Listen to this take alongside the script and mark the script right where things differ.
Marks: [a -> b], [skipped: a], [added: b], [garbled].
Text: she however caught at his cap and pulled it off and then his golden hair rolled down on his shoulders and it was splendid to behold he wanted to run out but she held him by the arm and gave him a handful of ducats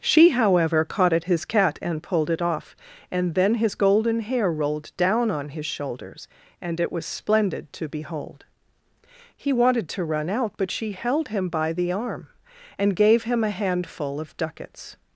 she however caught at his [cap -> cat] and pulled it off and then his golden hair rolled down on his shoulders and it was splendid to behold he wanted to run out but she held him by the arm and gave him a handful of ducats